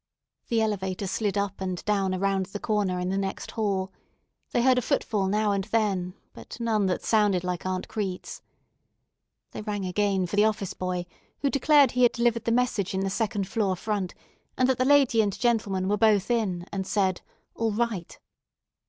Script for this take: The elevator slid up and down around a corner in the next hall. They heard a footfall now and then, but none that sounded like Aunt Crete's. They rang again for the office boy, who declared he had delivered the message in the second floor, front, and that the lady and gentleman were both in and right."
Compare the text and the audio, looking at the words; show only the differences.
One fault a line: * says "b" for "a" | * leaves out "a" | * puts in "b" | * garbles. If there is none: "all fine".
* says "the" for "a"
* puts in "said All"